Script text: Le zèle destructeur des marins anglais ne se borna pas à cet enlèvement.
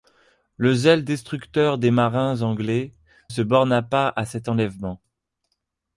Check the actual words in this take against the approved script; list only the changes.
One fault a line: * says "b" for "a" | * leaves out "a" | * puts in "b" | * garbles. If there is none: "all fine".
* leaves out "ne"